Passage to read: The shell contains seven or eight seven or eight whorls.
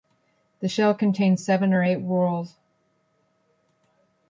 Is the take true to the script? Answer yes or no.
no